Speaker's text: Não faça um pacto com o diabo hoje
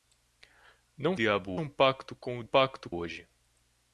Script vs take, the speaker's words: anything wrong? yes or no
yes